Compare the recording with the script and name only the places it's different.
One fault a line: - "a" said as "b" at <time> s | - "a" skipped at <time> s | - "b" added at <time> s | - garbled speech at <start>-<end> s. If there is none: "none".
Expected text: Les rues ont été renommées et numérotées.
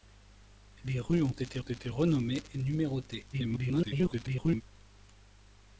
- "été" added at 1.6 s
- garbled speech at 3.3-4.6 s